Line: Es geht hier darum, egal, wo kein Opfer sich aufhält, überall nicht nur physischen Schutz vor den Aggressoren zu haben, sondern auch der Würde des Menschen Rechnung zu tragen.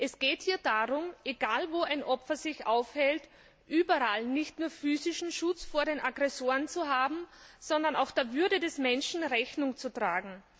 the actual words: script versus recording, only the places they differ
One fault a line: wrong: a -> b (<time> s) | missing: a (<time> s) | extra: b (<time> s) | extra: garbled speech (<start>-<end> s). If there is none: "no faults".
wrong: kein -> ein (1.8 s)